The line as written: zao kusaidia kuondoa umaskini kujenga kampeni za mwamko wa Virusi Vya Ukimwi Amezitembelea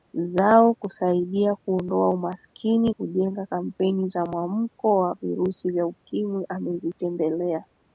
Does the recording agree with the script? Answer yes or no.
yes